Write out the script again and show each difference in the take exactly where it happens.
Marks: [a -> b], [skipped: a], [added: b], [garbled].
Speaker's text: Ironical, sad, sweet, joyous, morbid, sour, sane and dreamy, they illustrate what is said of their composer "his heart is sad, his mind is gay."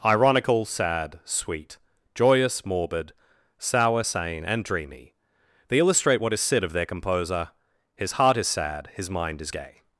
Ironical, sad, sweet, joyous, morbid, sour, sane and dreamy, they illustrate what is said of their composer "his heart is sad, his mind is gay."